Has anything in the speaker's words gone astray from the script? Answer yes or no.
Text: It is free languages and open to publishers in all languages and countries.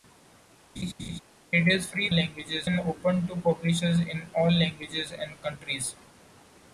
no